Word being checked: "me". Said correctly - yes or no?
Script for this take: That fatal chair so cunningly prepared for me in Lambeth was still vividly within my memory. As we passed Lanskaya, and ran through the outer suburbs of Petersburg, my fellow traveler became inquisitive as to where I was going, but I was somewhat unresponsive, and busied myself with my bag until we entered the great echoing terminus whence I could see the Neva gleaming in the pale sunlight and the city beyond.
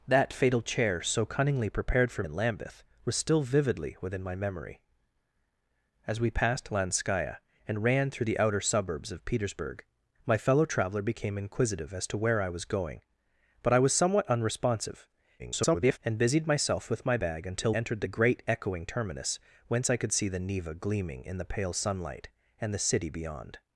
no